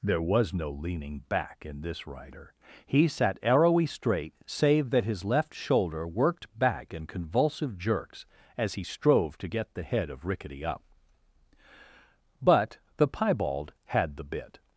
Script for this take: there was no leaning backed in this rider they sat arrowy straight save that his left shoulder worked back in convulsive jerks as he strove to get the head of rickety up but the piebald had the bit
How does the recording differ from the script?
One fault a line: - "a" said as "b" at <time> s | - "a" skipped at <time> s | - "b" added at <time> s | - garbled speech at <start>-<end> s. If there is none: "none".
- "backed" said as "back" at 1.3 s
- "they" said as "he" at 2.9 s